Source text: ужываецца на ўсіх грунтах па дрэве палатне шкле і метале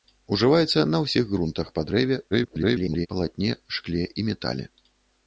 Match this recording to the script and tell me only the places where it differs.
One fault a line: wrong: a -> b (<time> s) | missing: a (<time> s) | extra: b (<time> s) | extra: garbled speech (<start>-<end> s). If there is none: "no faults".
extra: garbled speech (2.3-3.1 s)